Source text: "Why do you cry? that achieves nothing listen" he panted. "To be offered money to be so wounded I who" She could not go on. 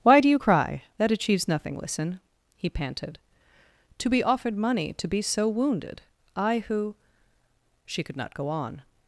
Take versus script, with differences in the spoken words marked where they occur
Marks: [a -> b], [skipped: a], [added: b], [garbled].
"Why do you cry? that achieves nothing listen" he panted. "To be offered money to be so wounded I who" She could not go on.